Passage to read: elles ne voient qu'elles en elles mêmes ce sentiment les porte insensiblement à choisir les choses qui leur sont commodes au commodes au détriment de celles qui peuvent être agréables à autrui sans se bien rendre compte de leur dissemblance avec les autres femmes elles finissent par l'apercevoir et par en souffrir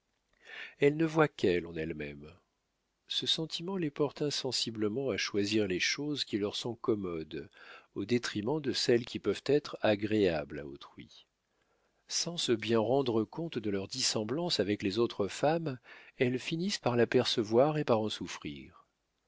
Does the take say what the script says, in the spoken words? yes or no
no